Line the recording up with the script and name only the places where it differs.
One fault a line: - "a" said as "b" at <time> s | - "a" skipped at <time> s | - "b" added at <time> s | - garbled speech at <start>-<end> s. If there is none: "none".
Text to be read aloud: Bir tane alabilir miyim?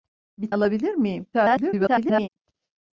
- "tane" skipped at 0.5 s
- garbled speech at 1.3-2.3 s